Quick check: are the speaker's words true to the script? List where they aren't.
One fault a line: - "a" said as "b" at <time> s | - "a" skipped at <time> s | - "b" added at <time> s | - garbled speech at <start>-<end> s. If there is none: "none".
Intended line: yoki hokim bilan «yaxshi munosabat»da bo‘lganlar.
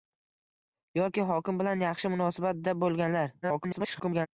- garbled speech at 3.4-4.3 s